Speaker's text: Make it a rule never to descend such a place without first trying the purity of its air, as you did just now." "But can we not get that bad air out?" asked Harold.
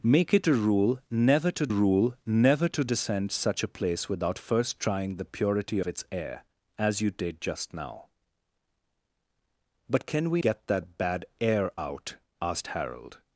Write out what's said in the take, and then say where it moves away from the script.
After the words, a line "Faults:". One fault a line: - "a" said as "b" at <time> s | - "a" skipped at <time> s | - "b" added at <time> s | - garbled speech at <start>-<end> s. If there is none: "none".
Make it a rule never to rule never to descend such a place without first trying the purity its air, as you did just now." "But can we get that bad air out?" asked Harold.
Faults:
- "rule never to" added at 1.7 s
- "of" skipped at 5.8 s
- "not" skipped at 10.4 s